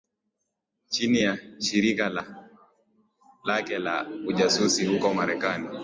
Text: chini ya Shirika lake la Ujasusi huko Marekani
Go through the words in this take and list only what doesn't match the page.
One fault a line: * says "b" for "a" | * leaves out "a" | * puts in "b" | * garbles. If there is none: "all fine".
all fine